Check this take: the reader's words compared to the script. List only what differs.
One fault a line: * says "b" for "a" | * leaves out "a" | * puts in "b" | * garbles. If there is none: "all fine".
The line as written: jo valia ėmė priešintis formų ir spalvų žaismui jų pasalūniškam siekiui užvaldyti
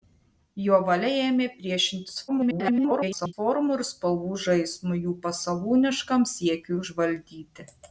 * garbles